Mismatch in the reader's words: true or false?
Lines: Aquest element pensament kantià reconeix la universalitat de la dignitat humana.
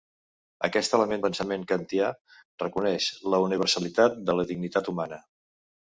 false